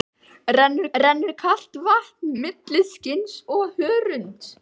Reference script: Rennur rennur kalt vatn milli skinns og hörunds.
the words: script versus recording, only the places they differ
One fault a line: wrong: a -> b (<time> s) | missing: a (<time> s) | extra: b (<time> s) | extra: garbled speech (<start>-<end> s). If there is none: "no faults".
no faults